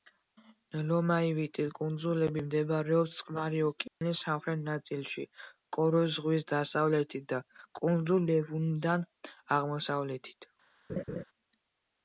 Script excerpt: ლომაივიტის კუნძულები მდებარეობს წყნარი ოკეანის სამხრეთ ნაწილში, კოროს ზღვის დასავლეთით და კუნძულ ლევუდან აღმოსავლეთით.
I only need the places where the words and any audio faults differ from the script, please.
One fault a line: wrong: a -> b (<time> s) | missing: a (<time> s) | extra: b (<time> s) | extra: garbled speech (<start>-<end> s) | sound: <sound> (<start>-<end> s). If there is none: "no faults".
sound: dropout (3.9-4.0 s)
sound: laugh (10.9-11.2 s)